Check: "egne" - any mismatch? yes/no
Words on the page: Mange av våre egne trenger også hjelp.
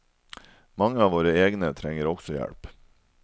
no